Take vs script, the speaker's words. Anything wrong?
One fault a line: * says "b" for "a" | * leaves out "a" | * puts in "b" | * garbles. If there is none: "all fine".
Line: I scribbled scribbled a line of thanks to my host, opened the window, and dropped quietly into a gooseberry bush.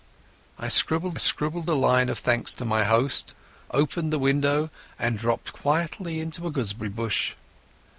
all fine